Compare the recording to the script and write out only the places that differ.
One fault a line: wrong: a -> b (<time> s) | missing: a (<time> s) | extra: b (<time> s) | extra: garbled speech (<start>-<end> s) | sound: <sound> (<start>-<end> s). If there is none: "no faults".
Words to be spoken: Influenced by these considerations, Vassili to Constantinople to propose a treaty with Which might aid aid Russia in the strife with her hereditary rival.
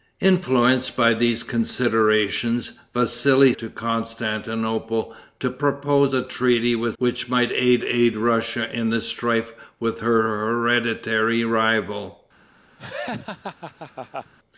sound: laugh (12.8-14.3 s)